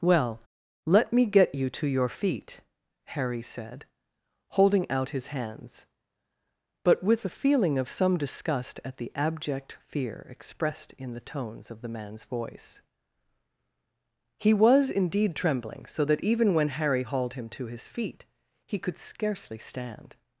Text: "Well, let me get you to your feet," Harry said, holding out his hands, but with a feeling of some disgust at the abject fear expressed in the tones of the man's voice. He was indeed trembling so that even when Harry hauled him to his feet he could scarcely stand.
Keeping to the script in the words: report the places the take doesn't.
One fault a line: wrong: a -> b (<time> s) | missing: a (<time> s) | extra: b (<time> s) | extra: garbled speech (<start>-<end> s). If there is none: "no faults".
no faults